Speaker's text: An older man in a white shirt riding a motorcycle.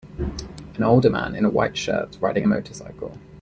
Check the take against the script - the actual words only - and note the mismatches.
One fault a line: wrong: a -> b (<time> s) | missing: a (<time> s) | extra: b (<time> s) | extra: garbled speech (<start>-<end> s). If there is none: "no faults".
no faults